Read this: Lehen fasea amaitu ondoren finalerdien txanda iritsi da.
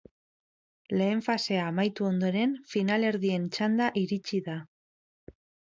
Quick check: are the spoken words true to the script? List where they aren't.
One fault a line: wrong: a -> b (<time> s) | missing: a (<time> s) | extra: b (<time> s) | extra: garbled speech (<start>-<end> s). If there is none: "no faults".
no faults